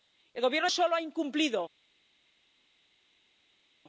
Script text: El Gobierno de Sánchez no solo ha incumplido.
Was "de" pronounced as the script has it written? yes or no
no